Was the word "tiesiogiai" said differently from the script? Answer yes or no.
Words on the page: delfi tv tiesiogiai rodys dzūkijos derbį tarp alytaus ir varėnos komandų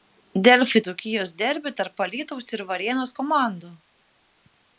yes